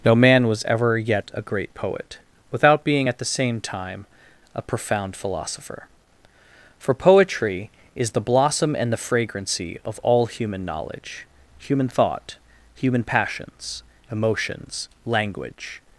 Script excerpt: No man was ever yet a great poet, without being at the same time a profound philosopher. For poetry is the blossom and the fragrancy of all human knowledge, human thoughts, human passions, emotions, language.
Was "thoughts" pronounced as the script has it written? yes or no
no